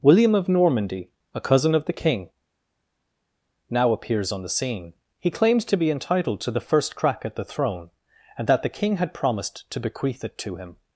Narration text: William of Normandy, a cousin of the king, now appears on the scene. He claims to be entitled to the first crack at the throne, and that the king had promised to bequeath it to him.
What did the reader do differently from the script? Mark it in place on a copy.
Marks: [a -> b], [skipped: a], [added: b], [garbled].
William of Normandy, a cousin of the king, now appears on the scene. He claims to be entitled to the first crack at the throne, and that the king had promised to bequeath it to him.